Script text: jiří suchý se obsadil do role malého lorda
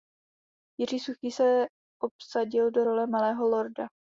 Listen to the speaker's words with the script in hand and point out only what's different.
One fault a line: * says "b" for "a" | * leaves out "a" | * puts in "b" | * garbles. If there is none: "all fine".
all fine